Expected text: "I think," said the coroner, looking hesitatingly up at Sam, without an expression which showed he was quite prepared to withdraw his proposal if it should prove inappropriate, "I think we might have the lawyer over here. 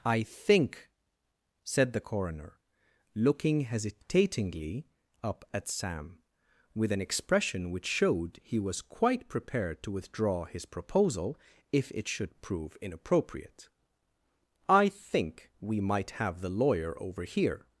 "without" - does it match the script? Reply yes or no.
no